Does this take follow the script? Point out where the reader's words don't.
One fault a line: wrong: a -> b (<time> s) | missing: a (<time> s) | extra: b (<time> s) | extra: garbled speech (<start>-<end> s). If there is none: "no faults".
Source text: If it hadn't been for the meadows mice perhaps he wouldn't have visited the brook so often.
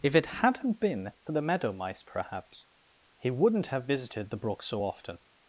wrong: meadows -> meadow (1.4 s)